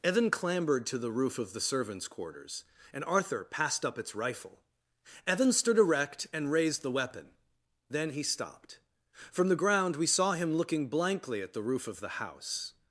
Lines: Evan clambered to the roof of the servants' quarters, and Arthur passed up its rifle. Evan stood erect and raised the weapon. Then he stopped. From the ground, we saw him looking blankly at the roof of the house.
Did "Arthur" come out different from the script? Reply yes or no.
no